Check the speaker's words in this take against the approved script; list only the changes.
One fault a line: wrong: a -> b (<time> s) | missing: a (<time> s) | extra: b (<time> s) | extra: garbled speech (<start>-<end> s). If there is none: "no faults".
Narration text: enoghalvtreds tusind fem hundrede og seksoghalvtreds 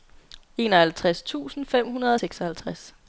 no faults